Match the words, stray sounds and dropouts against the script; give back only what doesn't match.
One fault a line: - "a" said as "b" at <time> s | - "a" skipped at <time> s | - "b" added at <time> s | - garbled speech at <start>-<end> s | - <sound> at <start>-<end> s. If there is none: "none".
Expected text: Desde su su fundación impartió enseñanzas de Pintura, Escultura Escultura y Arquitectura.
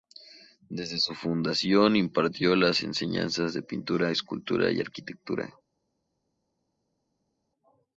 - "su" skipped at 1.1 s
- "las" added at 2.5 s
- "Escultura" skipped at 4.7 s